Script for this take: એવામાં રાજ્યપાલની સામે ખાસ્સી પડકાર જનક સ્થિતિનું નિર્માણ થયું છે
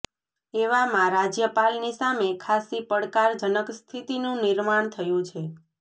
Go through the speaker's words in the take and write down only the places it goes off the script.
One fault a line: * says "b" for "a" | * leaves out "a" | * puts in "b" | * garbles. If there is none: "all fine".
all fine